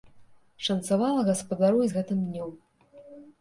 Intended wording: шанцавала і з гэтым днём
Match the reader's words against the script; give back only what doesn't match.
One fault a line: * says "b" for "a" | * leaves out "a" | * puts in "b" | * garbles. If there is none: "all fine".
* puts in "гаспадару"